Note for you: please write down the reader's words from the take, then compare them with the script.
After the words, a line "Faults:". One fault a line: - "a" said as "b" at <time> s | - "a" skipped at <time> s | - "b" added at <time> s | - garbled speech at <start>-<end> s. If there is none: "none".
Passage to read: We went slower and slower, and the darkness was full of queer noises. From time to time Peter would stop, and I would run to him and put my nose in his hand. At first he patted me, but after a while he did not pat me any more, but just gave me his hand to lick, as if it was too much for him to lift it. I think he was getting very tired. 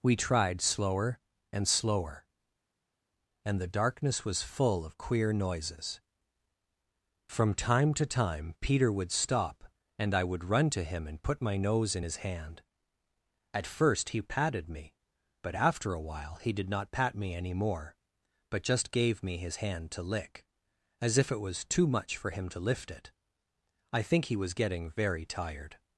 We tried slower and slower, and the darkness was full of queer noises. From time to time Peter would stop, and I would run to him and put my nose in his hand. At first he patted me, but after a while he did not pat me any more, but just gave me his hand to lick, as if it was too much for him to lift it. I think he was getting very tired.
Faults:
- "went" said as "tried" at 0.1 s